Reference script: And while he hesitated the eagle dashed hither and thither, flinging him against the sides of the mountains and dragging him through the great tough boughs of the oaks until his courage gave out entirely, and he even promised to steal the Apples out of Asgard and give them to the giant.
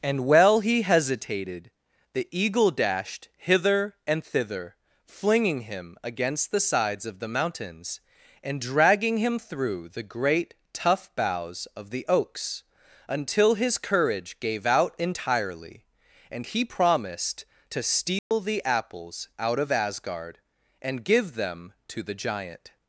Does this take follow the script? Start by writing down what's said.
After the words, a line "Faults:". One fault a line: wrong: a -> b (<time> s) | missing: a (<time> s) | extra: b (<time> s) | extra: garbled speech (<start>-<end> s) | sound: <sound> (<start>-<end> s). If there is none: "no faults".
And while he hesitated the eagle dashed hither and thither, flinging him against the sides of the mountains and dragging him through the great tough boughs of the oaks until his courage gave out entirely, and he promised to steal the Apples out of Asgard and give them to the giant.
Faults:
missing: even (16.6 s)
sound: dropout (18.2-18.3 s)